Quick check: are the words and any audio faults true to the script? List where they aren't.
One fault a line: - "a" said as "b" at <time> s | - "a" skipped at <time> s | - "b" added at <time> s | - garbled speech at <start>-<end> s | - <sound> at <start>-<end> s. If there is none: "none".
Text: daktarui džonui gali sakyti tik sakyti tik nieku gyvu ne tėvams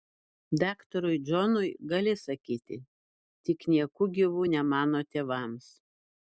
- "sakyti tik" skipped at 3.6 s
- "mano" added at 4.7 s